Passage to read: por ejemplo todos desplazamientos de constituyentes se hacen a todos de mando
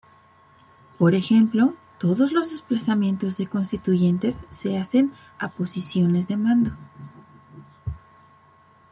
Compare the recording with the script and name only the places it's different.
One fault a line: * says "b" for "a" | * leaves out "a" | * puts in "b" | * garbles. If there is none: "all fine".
* puts in "los"
* says "posiciones" for "todos"